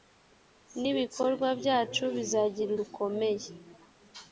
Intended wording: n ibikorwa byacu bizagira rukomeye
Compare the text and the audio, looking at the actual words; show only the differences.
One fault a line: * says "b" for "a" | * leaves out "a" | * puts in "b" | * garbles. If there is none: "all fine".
all fine